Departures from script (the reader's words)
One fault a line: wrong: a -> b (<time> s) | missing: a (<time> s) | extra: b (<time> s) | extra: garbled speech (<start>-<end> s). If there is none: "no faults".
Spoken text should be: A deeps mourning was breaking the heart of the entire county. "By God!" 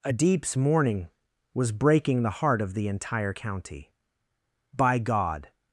no faults